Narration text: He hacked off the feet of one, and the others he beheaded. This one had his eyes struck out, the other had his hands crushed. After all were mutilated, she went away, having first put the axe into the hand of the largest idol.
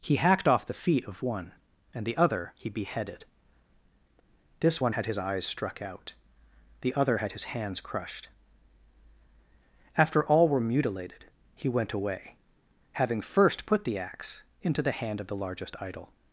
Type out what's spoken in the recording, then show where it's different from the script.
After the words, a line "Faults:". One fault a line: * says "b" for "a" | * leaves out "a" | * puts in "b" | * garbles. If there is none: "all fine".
He hacked off the feet of one, and the other he beheaded. This one had his eyes struck out, the other had his hands crushed. After all were mutilated, he went away, having first put the axe into the hand of the largest idol.
Faults:
* says "other" for "others"
* says "he" for "she"